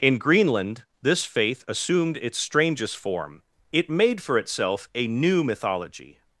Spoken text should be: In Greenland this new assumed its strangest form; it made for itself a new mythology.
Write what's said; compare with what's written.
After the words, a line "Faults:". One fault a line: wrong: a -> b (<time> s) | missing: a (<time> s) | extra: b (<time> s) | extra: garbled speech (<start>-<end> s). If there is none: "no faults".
In Greenland this faith assumed its strangest form; it made for itself a new mythology.
Faults:
wrong: new -> faith (1.2 s)